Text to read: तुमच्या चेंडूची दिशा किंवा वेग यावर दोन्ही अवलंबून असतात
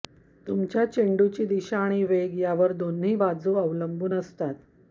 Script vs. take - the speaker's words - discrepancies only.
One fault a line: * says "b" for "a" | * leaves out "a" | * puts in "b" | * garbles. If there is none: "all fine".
* says "आणि" for "किंवा"
* puts in "बाजू"